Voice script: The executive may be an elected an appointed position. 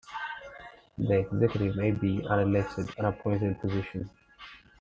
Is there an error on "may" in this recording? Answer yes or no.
no